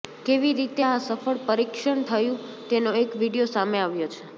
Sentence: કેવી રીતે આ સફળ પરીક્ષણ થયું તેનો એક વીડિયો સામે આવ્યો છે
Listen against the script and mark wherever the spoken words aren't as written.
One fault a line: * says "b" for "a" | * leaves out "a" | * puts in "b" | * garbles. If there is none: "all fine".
all fine